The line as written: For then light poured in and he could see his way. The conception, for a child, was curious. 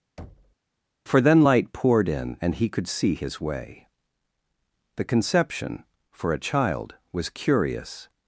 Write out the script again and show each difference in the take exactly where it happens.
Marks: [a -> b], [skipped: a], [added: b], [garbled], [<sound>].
[thud] For then light poured in and he could see his way. The conception, for a child, was curious.